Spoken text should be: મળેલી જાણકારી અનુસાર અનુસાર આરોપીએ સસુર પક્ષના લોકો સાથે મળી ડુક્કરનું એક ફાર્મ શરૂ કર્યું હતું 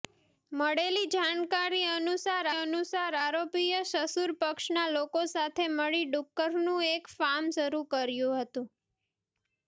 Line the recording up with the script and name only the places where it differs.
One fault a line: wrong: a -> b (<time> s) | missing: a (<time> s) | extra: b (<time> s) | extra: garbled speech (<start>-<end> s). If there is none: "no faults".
no faults